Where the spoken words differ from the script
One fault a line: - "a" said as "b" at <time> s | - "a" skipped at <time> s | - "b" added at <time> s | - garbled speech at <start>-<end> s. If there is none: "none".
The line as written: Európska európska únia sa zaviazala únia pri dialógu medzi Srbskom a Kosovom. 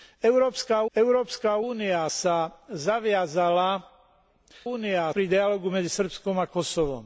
none